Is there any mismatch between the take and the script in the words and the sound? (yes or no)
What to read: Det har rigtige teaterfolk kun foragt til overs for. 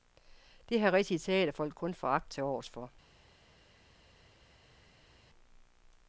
no